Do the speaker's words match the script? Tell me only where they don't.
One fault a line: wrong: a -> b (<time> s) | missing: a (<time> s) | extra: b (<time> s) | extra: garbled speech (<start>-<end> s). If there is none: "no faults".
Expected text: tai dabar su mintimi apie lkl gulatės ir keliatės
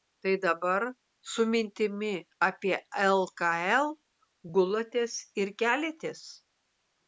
no faults